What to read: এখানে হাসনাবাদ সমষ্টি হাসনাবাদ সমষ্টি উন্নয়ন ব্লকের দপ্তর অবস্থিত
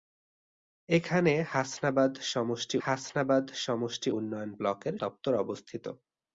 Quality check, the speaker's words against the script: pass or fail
pass